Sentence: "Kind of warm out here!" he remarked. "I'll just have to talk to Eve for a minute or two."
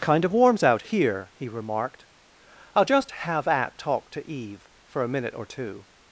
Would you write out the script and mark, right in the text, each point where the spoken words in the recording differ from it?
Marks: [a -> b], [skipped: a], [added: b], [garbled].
"Kind of [warm -> warms] out here!" he remarked. "I'll just have [to -> at] talk to Eve for a minute or two."